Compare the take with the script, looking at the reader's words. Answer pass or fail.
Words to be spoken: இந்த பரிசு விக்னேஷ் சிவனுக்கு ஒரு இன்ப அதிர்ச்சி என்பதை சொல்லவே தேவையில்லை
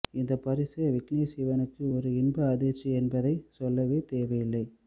pass